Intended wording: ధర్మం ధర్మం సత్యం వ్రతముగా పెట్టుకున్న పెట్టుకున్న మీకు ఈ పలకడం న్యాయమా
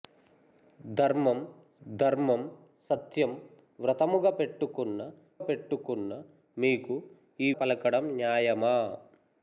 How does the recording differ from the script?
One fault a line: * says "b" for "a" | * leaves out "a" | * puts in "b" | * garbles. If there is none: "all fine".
all fine